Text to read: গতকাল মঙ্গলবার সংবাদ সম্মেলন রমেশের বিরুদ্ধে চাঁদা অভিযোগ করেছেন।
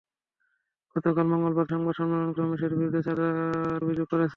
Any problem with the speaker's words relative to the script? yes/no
no